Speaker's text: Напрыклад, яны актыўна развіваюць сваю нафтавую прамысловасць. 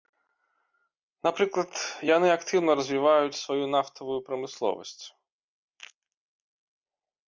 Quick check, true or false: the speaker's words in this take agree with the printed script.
true